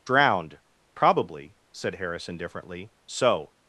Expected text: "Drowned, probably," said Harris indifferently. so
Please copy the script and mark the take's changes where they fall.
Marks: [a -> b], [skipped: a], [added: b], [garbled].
"Drowned, probably," said Harris indifferently. so